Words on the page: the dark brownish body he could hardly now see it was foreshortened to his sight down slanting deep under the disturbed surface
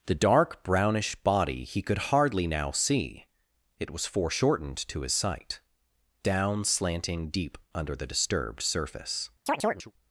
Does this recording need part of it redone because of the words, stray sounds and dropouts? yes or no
yes